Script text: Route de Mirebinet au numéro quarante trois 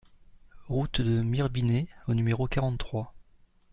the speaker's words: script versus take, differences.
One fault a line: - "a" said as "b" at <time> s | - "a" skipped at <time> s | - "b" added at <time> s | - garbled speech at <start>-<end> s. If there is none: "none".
none